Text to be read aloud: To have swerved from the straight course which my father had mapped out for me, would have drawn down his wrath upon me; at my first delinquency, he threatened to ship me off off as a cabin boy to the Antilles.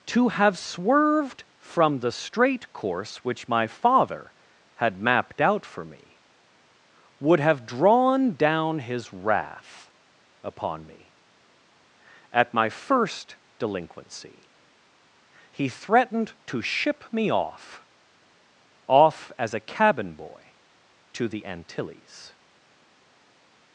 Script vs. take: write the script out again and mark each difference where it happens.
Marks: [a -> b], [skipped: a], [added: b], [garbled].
To have swerved from the straight course which my father had mapped out for me, would have drawn down his wrath upon me; at my first delinquency, he threatened to ship me off off as a cabin boy to the Antilles.